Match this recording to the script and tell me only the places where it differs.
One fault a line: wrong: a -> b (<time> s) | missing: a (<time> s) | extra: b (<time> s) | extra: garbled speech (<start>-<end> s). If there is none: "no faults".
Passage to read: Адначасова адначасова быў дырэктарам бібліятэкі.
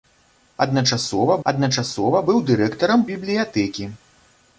no faults